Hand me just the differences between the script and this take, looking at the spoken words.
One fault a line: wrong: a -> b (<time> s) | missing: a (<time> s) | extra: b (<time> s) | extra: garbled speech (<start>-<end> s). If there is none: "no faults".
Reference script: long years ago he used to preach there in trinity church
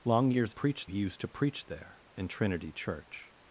wrong: ago -> preach (0.5 s)